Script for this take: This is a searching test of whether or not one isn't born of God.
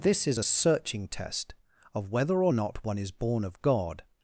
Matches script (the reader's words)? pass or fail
fail